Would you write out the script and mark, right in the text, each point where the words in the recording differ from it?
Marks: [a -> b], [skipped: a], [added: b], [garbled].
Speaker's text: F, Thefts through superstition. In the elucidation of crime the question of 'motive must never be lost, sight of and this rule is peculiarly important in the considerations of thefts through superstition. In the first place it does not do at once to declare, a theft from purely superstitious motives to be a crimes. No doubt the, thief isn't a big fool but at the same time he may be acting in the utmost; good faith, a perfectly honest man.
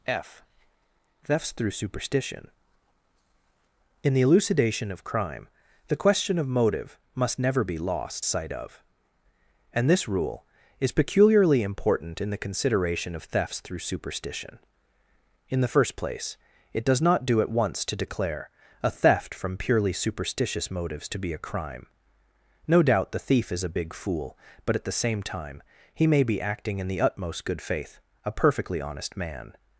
F, Thefts through superstition. In the elucidation of crime the question of 'motive must never be lost, sight of and this rule is peculiarly important in the [considerations -> consideration] of thefts through superstition. In the first place it does not do at once to declare, a theft from purely superstitious motives to be a [crimes. -> crime] No doubt the, thief [isn't -> is] a big fool but at the same time he may be acting in the utmost; good faith, a perfectly honest man.